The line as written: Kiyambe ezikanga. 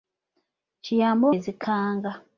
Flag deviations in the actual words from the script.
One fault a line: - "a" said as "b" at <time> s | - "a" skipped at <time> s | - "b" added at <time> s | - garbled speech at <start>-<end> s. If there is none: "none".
none